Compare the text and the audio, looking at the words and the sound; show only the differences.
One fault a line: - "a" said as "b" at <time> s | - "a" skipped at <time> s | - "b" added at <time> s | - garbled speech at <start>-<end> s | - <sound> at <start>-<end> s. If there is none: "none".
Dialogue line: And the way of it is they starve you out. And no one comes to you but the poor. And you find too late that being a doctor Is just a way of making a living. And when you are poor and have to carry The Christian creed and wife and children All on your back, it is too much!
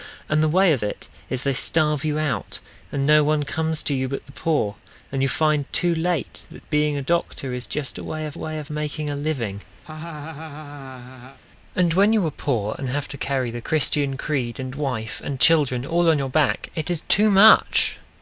- "way of" added at 8.4 s
- laugh at 9.8-11.4 s